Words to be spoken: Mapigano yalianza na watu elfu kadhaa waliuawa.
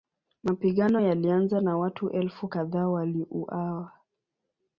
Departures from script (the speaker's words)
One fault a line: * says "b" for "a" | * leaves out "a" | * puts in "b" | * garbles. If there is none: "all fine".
all fine